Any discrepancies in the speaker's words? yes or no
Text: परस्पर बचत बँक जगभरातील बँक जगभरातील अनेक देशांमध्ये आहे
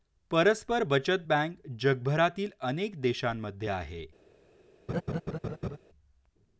yes